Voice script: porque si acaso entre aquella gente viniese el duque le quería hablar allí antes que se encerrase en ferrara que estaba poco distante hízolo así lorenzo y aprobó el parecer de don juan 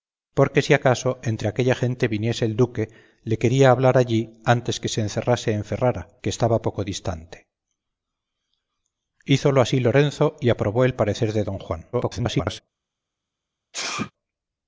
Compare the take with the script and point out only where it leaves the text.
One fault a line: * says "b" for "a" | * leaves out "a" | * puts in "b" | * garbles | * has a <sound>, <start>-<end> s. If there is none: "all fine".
* garbles
* has a sneeze, 13.7-14.1 s